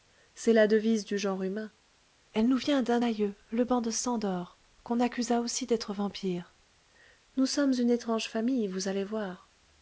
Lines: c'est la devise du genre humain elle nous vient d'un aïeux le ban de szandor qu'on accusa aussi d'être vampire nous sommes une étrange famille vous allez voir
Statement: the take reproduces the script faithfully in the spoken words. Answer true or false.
true